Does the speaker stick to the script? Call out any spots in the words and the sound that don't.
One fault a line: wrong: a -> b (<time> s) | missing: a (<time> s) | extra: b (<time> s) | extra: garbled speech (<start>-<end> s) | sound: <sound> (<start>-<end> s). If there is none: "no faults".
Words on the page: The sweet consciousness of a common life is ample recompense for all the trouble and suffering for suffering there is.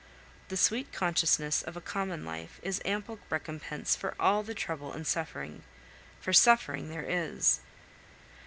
no faults